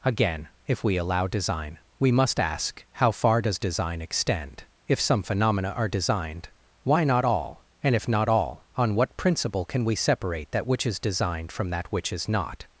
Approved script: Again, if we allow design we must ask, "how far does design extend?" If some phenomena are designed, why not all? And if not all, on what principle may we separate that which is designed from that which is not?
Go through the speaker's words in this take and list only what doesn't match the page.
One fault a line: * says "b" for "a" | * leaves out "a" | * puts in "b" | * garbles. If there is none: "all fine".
* says "can" for "may"